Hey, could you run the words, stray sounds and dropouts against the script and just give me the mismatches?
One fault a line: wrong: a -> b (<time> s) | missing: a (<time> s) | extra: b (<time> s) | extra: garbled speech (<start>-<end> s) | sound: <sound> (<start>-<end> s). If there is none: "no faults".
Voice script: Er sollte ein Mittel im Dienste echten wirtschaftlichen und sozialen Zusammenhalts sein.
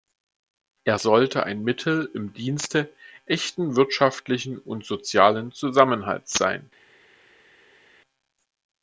no faults